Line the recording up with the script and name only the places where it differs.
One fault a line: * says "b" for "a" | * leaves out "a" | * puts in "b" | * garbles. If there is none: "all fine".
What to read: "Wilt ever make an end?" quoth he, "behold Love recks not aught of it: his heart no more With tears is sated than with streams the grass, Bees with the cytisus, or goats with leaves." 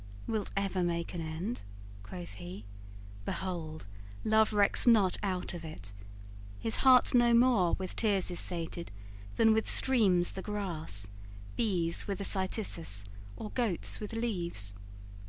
all fine